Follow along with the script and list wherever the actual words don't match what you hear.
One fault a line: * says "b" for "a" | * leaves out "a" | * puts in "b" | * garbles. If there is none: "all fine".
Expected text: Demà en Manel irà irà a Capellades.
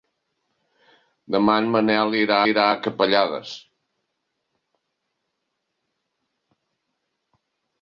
all fine